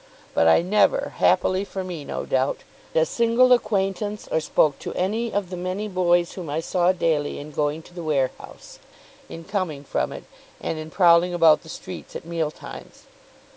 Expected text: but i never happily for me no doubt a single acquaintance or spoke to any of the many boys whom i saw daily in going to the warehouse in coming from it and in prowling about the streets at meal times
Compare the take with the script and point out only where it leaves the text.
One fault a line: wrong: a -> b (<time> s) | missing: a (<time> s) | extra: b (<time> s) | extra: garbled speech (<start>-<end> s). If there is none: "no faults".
no faults